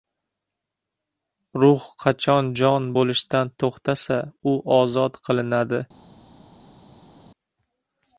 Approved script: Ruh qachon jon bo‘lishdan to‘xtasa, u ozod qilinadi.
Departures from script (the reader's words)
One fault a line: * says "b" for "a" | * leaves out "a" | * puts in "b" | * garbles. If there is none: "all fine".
all fine